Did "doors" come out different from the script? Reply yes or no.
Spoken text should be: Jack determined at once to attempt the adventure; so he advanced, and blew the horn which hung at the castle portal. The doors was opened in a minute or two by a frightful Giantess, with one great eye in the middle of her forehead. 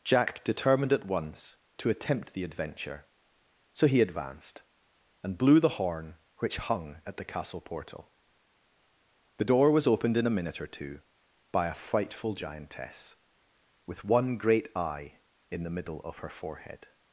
yes